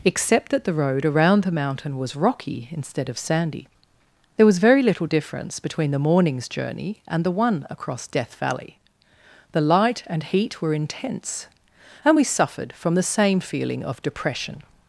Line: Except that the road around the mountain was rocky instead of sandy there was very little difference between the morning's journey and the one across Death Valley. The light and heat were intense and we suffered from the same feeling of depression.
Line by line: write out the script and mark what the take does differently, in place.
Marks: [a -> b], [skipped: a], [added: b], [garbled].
Except that the road around the mountain was rocky instead of sandy there was very little difference between the morning's journey and the one across Death Valley. The light and heat were intense and we suffered from the same feeling of depression.